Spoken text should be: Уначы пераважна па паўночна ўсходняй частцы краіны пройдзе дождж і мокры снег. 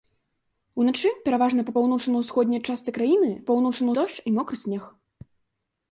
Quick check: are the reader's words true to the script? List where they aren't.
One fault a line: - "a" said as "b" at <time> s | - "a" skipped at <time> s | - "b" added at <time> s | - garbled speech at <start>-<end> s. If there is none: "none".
- "пройдзе" said as "паўночна" at 3.5 s